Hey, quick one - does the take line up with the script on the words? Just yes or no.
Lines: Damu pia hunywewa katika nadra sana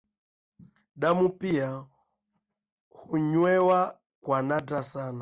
no